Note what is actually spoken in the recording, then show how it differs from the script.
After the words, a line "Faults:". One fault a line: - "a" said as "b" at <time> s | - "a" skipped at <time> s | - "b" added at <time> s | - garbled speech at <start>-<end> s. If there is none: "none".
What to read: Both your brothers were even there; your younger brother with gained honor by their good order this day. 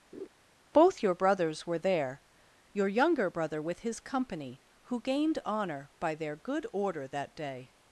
Both your brothers were there; your younger brother with his company, who gained honor by their good order that day.
Faults:
- "even" skipped at 1.8 s
- "his company who" added at 3.8 s
- "this" said as "that" at 7.1 s